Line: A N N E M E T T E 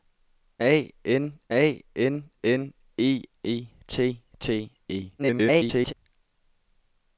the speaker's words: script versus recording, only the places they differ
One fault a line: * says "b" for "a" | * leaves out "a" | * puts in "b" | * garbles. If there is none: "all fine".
* puts in "a"
* puts in "N"
* leaves out "M"
* garbles